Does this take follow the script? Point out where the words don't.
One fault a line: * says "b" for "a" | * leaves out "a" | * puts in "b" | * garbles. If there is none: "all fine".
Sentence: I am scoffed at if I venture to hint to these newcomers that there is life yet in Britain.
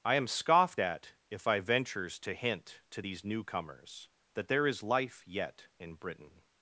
* says "ventures" for "venture"